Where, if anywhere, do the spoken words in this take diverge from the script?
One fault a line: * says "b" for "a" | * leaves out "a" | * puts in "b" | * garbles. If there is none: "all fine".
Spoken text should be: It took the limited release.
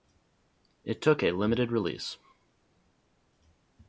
* says "a" for "the"